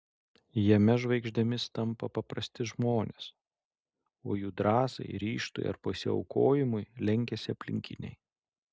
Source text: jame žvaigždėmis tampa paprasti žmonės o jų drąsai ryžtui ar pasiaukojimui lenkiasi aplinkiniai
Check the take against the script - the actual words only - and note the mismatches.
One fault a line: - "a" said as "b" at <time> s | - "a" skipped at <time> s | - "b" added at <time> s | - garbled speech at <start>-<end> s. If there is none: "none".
none